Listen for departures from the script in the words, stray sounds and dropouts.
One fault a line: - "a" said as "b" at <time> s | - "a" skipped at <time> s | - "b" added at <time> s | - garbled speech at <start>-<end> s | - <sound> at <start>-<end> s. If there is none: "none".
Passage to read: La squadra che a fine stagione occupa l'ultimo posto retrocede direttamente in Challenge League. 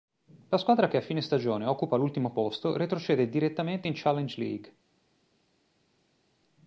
none